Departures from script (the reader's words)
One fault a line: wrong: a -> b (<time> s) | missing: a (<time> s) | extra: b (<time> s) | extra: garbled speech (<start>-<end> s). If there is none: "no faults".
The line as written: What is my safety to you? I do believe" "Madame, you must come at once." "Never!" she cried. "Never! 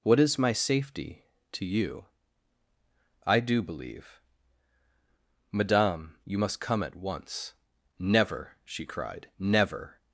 no faults